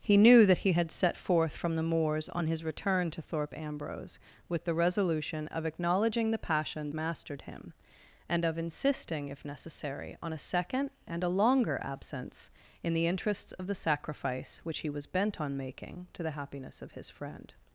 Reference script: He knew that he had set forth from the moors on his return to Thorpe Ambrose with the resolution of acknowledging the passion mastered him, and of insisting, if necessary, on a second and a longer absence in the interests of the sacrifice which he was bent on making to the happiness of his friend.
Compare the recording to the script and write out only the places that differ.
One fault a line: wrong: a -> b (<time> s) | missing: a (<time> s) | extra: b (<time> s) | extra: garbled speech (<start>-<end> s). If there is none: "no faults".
no faults